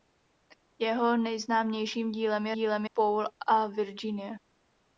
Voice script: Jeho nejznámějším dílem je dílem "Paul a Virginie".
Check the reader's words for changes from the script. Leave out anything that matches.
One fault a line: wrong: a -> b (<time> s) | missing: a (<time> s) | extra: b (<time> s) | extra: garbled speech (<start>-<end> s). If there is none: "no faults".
no faults